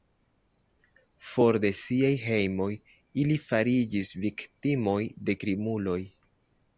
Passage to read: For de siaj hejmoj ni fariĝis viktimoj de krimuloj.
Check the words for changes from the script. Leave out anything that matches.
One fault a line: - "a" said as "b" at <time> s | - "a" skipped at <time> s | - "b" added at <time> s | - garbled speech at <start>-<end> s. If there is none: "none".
- "ni" said as "ili" at 3.2 s